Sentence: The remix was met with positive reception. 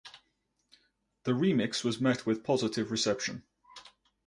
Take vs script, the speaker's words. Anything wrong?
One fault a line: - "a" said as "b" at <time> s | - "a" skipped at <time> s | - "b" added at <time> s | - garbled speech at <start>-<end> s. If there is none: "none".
none